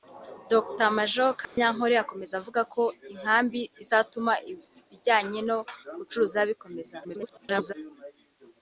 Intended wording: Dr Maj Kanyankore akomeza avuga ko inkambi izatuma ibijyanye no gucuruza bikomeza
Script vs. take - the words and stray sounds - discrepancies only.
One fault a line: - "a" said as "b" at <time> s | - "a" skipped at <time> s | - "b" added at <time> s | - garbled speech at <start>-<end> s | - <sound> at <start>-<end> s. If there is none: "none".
- dropout at 1.4-1.6 s
- garbled speech at 7.0-7.7 s